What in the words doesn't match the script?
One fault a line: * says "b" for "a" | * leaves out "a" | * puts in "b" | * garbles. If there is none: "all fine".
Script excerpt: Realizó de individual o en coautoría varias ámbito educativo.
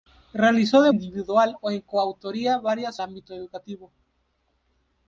all fine